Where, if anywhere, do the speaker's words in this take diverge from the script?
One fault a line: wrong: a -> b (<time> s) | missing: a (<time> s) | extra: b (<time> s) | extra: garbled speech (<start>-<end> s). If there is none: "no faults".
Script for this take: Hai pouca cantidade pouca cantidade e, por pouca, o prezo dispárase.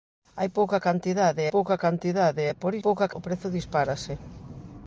no faults